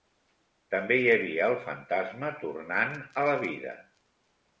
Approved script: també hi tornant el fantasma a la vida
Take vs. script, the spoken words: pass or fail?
fail